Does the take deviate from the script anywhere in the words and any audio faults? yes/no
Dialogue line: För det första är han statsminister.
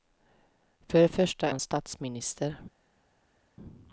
yes